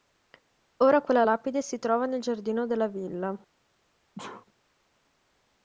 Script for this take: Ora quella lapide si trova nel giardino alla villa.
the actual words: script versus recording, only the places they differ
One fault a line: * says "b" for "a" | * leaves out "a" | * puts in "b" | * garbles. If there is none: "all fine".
* says "della" for "alla"